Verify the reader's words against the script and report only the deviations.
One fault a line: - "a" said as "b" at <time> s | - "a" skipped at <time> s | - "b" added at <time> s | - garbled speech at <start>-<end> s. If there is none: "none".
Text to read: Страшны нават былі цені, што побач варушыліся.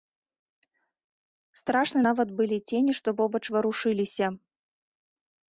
none